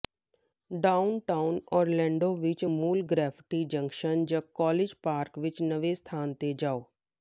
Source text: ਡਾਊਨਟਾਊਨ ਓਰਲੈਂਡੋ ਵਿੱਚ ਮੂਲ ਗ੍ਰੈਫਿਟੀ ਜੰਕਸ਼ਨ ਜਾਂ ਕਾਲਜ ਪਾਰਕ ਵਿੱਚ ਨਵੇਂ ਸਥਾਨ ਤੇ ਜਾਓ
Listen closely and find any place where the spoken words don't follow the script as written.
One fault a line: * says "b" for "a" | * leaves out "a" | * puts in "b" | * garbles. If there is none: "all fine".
all fine